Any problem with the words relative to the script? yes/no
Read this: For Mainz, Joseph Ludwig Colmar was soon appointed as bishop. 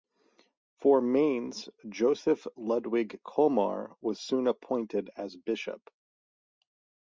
no